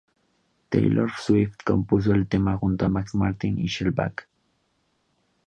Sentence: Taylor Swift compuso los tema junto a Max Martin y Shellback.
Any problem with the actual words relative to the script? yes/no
yes